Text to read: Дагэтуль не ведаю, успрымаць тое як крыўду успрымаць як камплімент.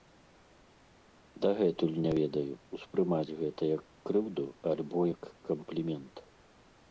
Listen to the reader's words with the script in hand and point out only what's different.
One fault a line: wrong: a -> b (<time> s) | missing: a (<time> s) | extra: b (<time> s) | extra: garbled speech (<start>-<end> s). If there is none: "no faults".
wrong: тое -> гэта (3.4 s)
wrong: успрымаць -> альбо (4.7 s)